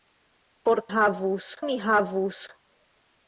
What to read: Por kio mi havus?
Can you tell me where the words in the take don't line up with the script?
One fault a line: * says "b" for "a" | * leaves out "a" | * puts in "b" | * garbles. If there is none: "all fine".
* says "havus" for "kio"